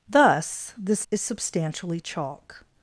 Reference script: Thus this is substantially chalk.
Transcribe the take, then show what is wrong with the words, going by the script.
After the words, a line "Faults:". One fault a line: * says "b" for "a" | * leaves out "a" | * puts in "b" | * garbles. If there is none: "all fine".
Thus this is substantially chalk.
Faults:
all fine